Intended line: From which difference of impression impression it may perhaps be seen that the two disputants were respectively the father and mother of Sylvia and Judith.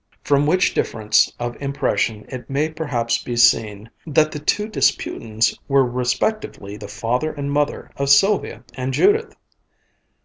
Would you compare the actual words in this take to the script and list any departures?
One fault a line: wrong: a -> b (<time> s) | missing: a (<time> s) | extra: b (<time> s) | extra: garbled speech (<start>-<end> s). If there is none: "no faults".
missing: impression (2.2 s)